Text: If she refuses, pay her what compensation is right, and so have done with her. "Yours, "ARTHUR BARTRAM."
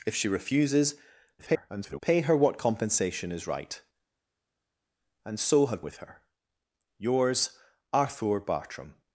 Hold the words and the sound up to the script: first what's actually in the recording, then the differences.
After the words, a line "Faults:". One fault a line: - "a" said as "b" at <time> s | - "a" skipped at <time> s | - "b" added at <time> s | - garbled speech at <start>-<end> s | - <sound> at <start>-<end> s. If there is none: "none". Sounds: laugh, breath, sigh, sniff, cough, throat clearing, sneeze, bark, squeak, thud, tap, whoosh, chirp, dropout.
If she refuses, [garbled] pay her what compensation is right, and so have with her. "Yours, "ARTHUR BARTRAM."
Faults:
- garbled speech at 1.4-2.0 s
- "done" skipped at 5.8 s